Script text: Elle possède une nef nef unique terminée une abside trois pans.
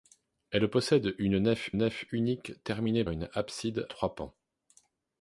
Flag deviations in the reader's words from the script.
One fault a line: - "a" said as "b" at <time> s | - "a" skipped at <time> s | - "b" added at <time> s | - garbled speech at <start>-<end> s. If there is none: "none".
none